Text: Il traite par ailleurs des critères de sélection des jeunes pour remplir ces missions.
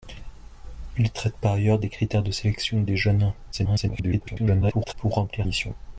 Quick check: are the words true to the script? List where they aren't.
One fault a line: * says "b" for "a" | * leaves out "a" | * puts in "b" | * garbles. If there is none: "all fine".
* garbles
* leaves out "ces"